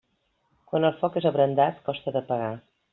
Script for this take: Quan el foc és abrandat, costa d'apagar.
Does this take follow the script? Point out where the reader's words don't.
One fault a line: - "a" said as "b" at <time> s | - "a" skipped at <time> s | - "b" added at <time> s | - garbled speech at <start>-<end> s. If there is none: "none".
none